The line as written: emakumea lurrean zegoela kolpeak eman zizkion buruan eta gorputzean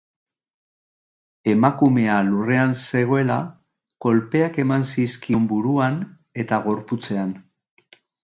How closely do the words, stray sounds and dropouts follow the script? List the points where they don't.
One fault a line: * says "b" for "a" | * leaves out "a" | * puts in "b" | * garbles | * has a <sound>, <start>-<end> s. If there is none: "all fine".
all fine